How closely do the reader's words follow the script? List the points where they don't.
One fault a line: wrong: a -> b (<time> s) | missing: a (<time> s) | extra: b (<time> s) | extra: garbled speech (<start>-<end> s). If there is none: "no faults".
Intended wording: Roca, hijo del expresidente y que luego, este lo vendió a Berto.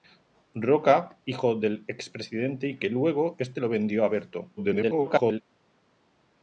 extra: garbled speech (4.6-5.4 s)